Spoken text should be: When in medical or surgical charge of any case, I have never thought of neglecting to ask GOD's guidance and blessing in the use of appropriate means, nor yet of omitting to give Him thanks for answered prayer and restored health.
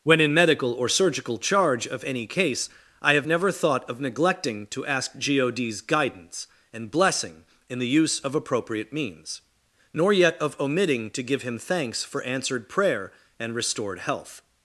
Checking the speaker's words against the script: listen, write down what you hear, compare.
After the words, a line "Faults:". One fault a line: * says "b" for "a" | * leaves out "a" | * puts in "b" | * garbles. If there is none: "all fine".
When in medical or surgical charge of any case, I have never thought of neglecting to ask GOD's guidance and blessing in the use of appropriate means, nor yet of omitting to give Him thanks for answered prayer and restored health.
Faults:
all fine